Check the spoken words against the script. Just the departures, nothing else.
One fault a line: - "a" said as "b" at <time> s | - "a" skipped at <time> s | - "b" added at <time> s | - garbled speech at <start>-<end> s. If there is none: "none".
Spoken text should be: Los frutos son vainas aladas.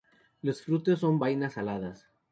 none